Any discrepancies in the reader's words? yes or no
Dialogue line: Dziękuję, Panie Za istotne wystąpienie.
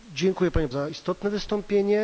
no